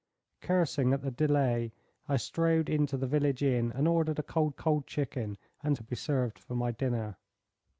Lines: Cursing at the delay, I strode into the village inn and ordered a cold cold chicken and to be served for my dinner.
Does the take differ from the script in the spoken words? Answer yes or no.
no